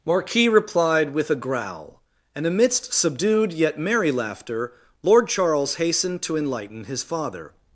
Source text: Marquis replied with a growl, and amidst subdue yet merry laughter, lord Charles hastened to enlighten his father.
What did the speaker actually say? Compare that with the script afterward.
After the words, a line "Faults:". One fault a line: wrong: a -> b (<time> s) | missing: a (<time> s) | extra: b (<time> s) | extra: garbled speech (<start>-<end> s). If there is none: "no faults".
Marquis replied with a growl, and amidst subdued yet merry laughter, lord Charles hastened to enlighten his father.
Faults:
wrong: subdue -> subdued (2.9 s)